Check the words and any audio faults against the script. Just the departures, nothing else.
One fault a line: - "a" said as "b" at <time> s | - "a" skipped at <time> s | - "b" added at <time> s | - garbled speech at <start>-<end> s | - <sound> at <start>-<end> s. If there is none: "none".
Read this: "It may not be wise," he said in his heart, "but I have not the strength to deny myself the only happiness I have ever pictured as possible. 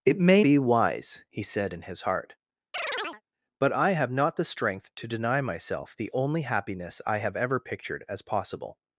- "not" skipped at 0.4 s
- chirp at 2.7-3.2 s